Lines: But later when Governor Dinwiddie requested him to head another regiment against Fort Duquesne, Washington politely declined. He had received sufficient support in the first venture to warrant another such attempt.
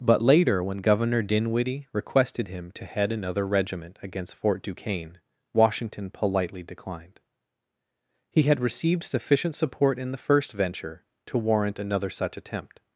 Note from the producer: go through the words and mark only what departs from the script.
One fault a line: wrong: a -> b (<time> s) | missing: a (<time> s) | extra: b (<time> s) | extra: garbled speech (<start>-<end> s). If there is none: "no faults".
no faults